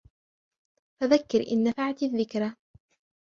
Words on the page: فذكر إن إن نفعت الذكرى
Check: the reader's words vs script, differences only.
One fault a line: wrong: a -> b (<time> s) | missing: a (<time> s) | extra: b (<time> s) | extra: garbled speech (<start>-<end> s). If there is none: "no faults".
missing: إن (1.6 s)